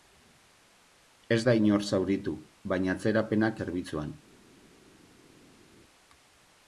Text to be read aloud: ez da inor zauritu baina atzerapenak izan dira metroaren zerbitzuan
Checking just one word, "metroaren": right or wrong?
wrong